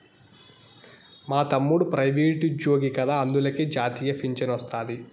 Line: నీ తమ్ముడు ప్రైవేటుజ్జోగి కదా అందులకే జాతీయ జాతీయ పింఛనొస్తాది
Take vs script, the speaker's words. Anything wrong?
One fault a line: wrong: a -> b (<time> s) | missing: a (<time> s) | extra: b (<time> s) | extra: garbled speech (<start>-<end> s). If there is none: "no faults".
wrong: నీ -> మా (1.3 s)
missing: జాతీయ (4.1 s)